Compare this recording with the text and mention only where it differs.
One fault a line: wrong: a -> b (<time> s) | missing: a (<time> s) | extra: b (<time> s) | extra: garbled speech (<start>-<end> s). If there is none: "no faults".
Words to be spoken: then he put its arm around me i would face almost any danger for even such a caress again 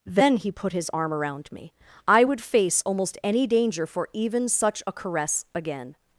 wrong: its -> his (0.7 s)